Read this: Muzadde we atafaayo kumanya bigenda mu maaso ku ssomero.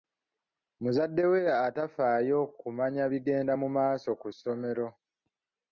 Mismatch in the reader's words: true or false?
false